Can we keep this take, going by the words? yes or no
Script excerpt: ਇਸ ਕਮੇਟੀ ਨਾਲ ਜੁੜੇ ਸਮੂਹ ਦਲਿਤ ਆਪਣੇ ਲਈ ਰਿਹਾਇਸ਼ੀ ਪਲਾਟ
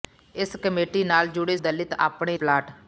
no